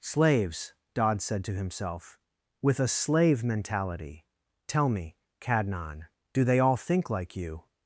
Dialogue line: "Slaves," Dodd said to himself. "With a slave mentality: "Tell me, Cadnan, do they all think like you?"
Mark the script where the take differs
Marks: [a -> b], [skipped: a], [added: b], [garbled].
"Slaves," Dodd said to himself. "With a slave mentality: "Tell me, Cadnan, do they all think like you?"